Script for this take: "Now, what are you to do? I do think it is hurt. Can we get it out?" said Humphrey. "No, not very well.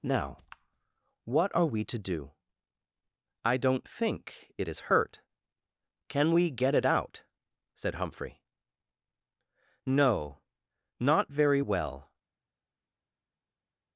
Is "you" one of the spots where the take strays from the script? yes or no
yes